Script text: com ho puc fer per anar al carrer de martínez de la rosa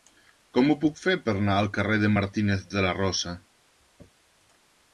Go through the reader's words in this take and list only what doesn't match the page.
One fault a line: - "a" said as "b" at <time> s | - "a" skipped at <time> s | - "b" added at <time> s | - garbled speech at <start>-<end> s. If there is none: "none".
none